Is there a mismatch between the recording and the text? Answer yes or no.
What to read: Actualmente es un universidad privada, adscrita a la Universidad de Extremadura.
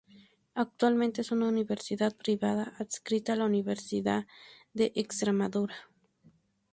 yes